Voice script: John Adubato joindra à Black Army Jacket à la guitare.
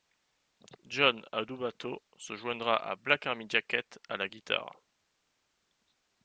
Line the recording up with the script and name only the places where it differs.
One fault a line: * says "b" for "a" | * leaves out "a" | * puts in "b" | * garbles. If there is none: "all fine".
* puts in "se"